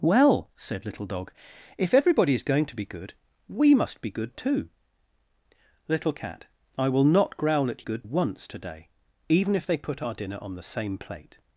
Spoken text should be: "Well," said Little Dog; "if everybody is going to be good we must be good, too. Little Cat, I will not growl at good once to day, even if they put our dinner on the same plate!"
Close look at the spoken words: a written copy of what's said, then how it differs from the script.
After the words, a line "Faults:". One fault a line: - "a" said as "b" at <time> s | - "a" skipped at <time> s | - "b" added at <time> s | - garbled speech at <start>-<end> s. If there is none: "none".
"Well," said Little Dog; "if everybody is going to be good we must be good, too. Little Cat, I will not growl at good once to day, even if they put our dinner on the same plate!"
Faults:
none